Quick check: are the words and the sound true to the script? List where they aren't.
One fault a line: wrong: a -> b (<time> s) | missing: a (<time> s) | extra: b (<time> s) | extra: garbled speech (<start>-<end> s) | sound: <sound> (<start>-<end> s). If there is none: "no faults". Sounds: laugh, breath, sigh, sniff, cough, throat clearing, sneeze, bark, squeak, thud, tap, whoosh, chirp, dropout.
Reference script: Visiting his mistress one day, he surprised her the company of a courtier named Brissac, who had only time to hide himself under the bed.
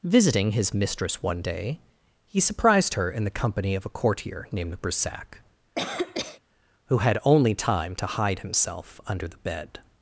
extra: in (3.1 s)
sound: cough (5.8-6.4 s)